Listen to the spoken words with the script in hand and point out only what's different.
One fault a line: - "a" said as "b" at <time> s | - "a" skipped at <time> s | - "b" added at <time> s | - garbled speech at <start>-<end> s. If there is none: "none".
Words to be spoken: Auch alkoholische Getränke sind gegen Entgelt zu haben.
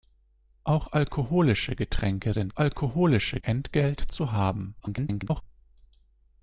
- "gegen" said as "alkoholische" at 2.6 s
- garbled speech at 4.8-5.4 s